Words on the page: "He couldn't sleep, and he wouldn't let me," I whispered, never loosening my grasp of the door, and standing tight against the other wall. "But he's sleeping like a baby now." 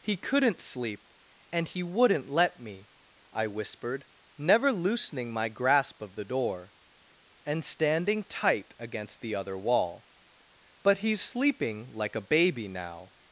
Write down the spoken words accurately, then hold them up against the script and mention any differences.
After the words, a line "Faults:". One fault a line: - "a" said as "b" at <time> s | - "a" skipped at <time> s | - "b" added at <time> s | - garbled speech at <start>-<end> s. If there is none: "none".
"He couldn't sleep, and he wouldn't let me," I whispered, never loosening my grasp of the door, and standing tight against the other wall. "But he's sleeping like a baby now."
Faults:
none